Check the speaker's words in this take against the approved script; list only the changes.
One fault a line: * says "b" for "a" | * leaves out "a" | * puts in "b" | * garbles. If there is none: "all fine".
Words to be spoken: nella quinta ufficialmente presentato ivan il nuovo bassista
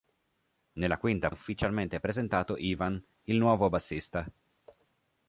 all fine